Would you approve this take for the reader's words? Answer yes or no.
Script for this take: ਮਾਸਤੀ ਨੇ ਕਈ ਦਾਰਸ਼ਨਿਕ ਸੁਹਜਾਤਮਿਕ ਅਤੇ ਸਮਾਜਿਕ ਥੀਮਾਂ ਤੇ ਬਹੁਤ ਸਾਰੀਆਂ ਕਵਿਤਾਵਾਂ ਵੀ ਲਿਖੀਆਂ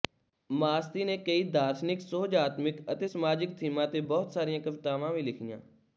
yes